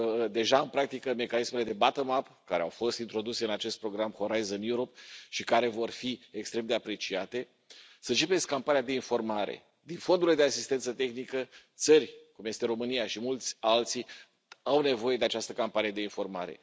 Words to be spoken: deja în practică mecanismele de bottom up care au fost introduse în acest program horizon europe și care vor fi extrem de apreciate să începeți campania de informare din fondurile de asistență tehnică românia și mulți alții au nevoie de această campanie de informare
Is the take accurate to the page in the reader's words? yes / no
no